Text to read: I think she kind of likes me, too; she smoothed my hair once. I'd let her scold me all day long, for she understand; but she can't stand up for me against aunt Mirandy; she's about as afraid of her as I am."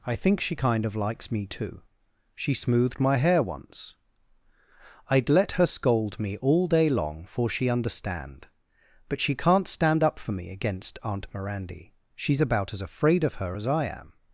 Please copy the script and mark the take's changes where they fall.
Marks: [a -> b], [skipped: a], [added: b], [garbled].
I think she kind of likes me, too; she smoothed my hair once. I'd let her scold me all day long, for she understand; but she can't stand up for me against aunt Mirandy; she's about as afraid of her as I am."